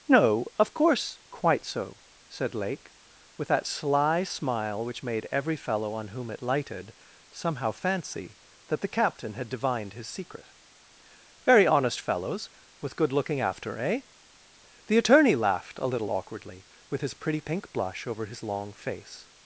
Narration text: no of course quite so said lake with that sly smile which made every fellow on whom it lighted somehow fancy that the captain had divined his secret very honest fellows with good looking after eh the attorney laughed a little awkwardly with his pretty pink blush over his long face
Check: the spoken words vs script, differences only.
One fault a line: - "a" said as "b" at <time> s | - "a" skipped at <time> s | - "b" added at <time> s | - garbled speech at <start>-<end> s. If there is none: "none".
none